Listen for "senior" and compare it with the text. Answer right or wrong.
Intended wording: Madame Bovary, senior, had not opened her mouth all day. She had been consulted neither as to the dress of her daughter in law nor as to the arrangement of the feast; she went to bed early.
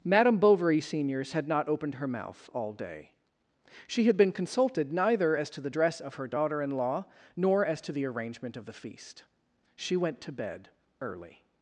wrong